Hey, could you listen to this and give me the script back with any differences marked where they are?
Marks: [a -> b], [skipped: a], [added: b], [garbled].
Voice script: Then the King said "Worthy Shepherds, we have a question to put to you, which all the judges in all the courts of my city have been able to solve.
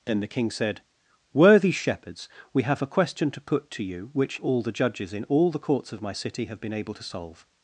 Then the King said "Worthy Shepherds, we have a question to put to you, which all the judges in all the courts of my city have been able to solve.